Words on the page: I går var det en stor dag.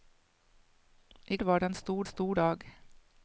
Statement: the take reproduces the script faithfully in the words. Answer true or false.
false